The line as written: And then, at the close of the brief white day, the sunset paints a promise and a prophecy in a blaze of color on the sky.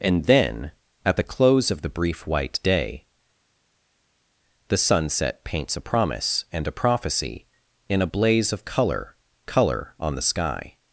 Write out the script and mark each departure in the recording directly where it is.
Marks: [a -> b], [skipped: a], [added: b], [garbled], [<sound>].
And then, at the close of the brief white day, the sunset paints a promise and a prophecy in a blaze of color [added: color] on the sky.